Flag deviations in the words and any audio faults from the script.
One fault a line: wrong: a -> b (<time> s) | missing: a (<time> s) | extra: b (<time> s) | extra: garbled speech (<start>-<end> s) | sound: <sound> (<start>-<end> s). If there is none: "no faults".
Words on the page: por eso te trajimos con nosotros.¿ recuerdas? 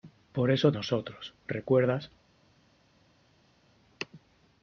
missing: te trajimos con (0.7 s)